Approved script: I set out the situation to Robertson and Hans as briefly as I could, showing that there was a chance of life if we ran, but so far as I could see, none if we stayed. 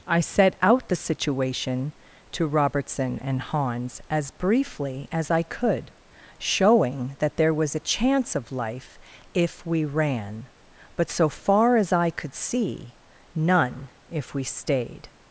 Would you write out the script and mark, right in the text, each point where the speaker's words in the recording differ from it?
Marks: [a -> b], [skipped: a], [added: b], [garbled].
I set out the situation to Robertson and Hans as briefly as I could, showing that there was a chance of life if we ran, but so far as I could see, none if we stayed.